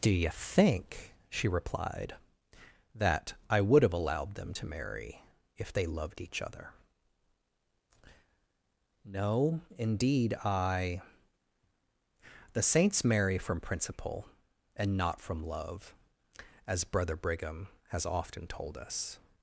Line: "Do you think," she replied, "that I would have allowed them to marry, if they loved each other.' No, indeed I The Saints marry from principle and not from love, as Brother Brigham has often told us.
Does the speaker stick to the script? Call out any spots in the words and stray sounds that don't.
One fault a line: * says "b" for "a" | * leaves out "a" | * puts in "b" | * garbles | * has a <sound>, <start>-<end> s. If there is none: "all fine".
all fine